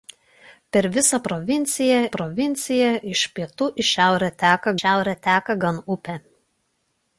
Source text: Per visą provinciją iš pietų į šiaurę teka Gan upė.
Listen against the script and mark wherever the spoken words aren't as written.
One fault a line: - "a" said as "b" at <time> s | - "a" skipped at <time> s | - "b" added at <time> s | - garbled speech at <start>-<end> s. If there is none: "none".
- "provinciją" added at 2.1 s
- "šiaurę teka" added at 4.8 s